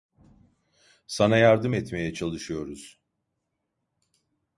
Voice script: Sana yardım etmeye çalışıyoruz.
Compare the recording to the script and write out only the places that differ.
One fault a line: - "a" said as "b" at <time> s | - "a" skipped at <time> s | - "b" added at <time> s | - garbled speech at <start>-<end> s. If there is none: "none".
none